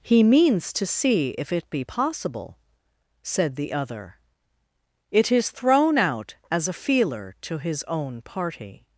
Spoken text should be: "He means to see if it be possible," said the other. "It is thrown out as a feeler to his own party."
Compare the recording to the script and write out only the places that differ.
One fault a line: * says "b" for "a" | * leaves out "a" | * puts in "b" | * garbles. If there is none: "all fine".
all fine